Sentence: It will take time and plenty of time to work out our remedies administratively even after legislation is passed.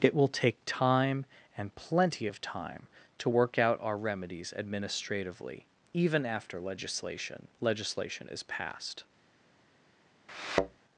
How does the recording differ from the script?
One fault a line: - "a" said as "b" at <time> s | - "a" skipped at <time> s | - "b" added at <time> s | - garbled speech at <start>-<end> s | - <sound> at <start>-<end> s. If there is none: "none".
- "legislation" added at 7.6 s
- thud at 10.3-10.8 s